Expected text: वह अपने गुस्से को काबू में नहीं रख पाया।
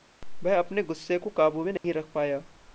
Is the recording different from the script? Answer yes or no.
no